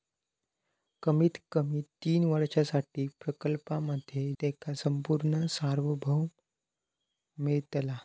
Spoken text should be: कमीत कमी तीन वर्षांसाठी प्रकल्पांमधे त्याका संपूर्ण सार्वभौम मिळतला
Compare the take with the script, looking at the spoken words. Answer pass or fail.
pass